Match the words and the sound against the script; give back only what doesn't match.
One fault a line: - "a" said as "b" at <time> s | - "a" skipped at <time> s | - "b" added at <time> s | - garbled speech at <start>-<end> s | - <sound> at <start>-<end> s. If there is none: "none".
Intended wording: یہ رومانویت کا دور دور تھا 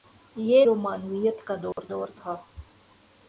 - dropout at 1.7-1.8 s